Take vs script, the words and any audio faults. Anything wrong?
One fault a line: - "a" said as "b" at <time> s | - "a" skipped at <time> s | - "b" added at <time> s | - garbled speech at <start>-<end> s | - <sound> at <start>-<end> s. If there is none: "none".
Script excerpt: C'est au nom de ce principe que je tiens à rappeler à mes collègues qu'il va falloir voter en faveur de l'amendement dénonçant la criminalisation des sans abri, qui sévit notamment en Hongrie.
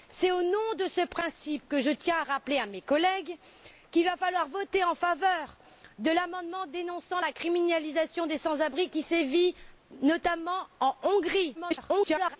- garbled speech at 11.5-12.4 s